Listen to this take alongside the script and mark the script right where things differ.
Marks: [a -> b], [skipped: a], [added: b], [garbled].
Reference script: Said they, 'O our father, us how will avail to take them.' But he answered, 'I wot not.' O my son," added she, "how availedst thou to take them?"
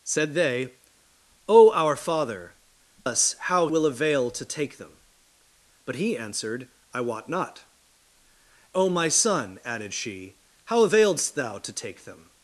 Said they, 'O our father, us how will avail to take them.' But he answered, 'I wot not.' O my son," added she, "how availedst thou to take them?"